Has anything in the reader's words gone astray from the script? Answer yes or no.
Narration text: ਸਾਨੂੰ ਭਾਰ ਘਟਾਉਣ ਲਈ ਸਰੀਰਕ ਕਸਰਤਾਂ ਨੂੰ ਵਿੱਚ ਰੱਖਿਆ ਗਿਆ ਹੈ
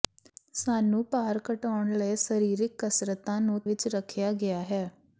no